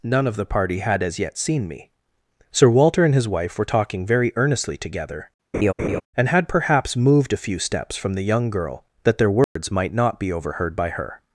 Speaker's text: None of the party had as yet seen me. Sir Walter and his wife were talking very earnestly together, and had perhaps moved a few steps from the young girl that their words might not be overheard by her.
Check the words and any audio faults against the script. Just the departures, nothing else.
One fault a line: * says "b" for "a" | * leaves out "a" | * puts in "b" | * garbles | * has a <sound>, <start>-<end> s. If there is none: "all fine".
* has a laugh, 5.5-6.0 s
* has a dropout, 9.4-9.6 s